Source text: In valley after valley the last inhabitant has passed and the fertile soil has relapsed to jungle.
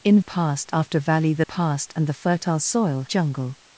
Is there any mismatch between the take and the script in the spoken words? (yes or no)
yes